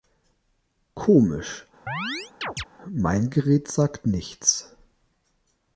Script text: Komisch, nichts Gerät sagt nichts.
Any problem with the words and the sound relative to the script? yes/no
yes